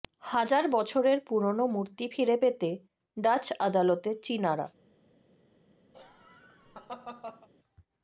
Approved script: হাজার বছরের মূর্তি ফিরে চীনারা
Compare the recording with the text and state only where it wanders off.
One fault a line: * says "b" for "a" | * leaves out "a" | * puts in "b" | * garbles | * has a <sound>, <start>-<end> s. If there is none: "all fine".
* puts in "পুরনো"
* puts in "পেতে ডাচ আদালতে"
* has a laugh, 5.9-7.5 s